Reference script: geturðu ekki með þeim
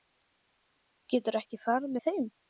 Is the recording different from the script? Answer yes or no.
yes